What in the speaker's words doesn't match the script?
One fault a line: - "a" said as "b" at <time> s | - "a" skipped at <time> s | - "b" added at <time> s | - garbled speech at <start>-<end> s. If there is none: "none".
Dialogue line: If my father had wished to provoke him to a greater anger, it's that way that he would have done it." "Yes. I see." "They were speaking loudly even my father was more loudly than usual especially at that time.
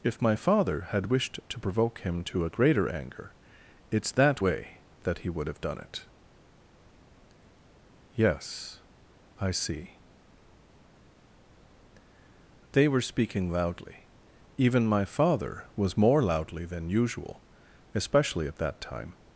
none